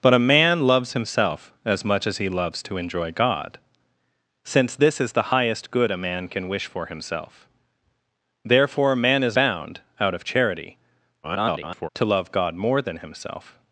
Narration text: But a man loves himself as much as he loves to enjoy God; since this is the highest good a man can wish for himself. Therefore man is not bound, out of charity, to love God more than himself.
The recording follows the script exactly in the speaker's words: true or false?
false